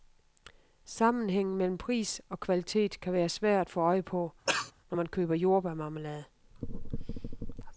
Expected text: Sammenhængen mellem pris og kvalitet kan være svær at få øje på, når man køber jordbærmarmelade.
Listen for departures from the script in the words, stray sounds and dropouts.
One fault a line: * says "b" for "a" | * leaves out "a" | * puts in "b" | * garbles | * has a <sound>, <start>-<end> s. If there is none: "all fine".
* has a cough, 4.5-4.7 s